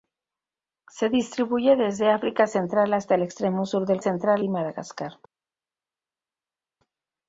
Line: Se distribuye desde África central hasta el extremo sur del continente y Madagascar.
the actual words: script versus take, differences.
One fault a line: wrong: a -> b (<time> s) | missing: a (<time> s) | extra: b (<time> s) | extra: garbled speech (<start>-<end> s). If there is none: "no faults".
wrong: continente -> central (4.0 s)